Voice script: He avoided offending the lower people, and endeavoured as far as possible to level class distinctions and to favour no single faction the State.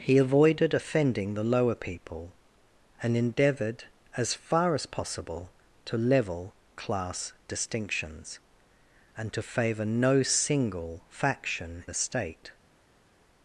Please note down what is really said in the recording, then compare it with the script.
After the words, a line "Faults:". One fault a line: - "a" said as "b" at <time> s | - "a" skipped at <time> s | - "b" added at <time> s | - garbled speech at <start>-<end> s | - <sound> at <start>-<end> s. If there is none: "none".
He avoided offending the lower people, and endeavoured as far as possible to level class distinctions and to favour no single faction the State.
Faults:
none